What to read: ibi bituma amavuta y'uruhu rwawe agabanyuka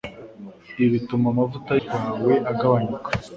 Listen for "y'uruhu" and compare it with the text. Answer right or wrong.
wrong